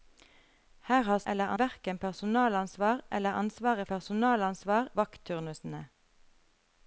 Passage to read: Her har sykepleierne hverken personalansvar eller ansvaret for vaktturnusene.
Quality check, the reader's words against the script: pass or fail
fail